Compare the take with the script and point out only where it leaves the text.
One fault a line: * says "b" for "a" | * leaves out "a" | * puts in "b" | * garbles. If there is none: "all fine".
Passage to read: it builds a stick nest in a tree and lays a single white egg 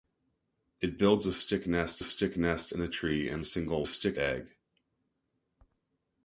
* puts in "stick nest"
* leaves out "lays"
* says "stick" for "white"